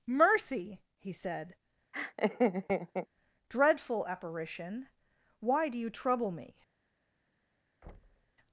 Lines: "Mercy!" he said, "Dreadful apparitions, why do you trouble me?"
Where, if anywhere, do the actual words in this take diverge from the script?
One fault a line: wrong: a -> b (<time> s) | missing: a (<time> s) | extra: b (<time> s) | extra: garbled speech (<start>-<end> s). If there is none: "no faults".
wrong: apparitions -> apparition (4.1 s)